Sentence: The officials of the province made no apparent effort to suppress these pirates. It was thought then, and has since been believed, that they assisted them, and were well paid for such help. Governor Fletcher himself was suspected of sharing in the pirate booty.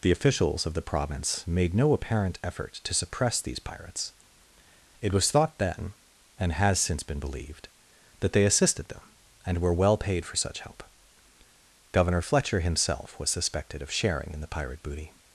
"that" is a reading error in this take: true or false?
false